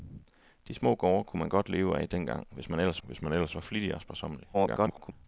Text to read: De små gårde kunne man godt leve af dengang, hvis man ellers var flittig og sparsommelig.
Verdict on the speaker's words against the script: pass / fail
fail